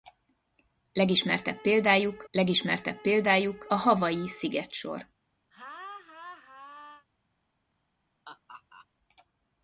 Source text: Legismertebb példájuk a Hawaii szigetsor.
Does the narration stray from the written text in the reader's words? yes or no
yes